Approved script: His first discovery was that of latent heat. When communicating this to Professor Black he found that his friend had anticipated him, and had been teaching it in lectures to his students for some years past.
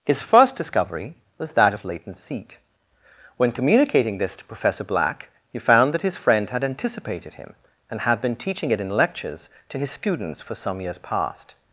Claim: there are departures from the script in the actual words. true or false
true